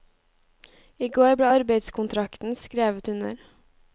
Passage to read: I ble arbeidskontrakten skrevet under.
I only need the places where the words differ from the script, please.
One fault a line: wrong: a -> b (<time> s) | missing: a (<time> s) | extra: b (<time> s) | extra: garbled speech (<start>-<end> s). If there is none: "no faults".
extra: går (1.2 s)